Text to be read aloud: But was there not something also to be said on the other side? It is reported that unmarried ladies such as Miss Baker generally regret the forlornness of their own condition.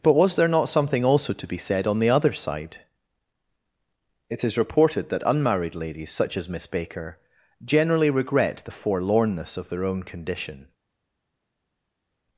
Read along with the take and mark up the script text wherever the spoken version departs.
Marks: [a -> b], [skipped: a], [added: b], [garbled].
But was there not something also to be said on the other side? It is reported that unmarried ladies such as Miss Baker generally regret the forlornness of their own condition.